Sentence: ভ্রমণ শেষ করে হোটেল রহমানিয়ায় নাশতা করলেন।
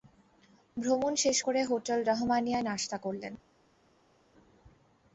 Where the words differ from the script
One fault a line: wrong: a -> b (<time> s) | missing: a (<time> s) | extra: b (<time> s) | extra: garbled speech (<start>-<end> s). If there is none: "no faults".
no faults